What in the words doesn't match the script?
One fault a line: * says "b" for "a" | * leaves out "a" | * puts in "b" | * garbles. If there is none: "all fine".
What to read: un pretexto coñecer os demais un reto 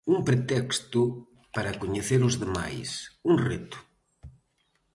* puts in "para"